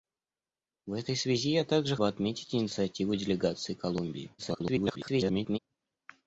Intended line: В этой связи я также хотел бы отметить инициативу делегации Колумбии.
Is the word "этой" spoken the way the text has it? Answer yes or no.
yes